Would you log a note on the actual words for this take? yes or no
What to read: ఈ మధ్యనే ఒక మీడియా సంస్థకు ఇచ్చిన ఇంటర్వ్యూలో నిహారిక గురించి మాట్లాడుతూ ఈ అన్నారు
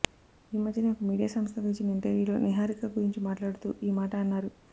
yes